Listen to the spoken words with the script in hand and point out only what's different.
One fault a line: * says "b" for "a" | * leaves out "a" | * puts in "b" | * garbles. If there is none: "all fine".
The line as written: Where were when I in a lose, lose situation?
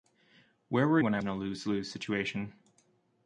all fine